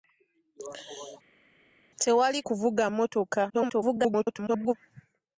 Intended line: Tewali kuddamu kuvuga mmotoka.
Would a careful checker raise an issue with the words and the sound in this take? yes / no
yes